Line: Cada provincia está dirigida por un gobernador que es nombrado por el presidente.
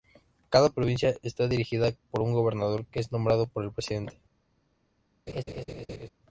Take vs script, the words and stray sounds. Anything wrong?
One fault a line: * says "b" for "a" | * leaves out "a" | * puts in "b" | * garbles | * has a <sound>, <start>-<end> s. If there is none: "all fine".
* has a laugh, 5.3-6.1 s